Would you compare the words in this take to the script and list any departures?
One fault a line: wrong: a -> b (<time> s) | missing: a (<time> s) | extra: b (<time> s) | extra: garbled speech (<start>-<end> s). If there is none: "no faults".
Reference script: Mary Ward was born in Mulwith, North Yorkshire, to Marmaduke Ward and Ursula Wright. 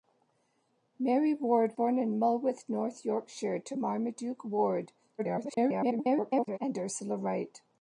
missing: was (1.8 s)
extra: garbled speech (5.2-6.6 s)